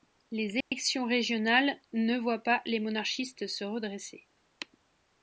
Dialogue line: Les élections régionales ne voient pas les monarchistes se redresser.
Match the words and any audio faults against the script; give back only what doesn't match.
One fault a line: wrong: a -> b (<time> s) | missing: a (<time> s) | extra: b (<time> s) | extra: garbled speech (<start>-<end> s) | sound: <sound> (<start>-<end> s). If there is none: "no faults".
sound: dropout (0.6-0.7 s)